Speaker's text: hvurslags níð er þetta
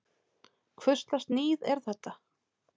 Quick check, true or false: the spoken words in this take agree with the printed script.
true